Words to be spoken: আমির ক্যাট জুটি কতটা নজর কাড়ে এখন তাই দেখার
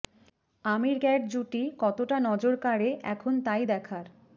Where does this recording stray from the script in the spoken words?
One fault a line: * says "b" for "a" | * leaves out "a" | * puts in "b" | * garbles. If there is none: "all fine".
all fine